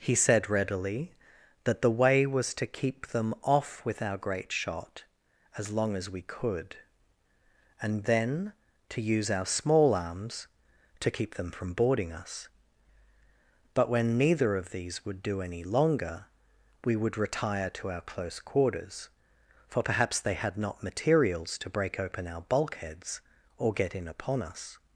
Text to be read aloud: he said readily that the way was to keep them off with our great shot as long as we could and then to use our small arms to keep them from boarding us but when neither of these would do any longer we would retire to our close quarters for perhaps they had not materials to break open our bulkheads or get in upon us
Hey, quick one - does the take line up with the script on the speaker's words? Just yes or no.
yes